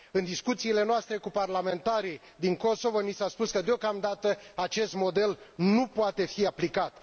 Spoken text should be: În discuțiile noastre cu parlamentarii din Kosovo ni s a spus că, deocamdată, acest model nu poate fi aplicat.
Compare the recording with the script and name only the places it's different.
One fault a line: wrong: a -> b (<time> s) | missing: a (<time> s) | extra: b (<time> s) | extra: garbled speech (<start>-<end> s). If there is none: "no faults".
no faults